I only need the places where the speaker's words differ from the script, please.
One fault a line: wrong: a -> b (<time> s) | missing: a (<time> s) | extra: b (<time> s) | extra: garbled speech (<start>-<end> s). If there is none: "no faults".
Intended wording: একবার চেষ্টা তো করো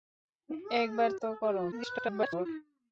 missing: চেষ্টা (1.1 s)
extra: garbled speech (1.7-2.5 s)